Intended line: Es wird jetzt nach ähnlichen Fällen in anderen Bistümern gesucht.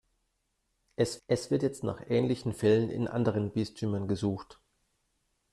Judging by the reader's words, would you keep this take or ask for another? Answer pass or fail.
fail